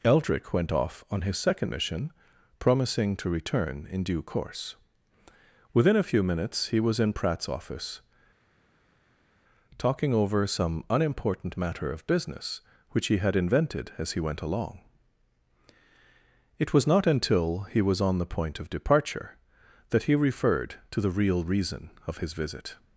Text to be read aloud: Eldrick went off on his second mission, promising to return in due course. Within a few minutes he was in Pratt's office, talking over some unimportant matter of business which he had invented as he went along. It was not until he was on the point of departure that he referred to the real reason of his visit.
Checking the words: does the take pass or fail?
pass